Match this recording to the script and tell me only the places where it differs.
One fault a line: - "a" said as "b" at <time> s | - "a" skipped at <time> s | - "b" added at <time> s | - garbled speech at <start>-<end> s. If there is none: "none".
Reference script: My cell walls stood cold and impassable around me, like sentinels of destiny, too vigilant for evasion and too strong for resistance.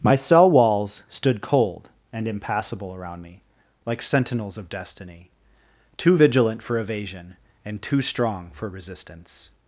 none